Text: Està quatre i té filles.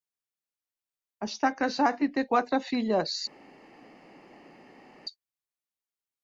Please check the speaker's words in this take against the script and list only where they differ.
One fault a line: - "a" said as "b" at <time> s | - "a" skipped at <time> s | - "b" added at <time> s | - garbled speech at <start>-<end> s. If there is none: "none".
- "quatre" said as "casat" at 1.6 s
- "quatre" added at 2.3 s